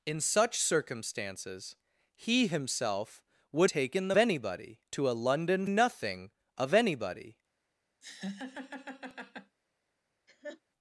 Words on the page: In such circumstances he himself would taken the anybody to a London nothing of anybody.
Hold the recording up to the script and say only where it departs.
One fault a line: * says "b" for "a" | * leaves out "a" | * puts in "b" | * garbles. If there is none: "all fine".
all fine